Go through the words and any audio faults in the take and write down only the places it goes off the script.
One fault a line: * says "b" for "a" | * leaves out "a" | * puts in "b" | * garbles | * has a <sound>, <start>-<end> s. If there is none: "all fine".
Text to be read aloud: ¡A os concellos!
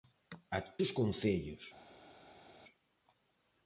all fine